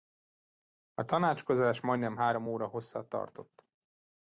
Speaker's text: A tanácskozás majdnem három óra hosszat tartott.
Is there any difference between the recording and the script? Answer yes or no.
no